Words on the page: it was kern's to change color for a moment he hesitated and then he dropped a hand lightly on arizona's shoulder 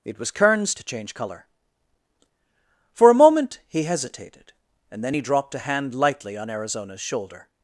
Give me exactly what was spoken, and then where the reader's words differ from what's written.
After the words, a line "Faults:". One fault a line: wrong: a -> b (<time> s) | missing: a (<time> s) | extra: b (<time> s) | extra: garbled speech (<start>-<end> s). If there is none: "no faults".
it was kern's to change color for a moment he hesitated and then he dropped a hand lightly on arizona's shoulder
Faults:
no faults